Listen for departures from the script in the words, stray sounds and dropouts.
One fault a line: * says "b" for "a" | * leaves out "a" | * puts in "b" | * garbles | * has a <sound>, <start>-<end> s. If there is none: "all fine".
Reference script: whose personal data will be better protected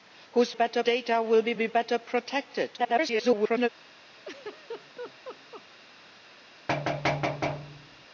* says "better" for "personal"
* puts in "be"
* garbles
* has a laugh, 4.2-5.6 s
* has a thud, 6.7-8.1 s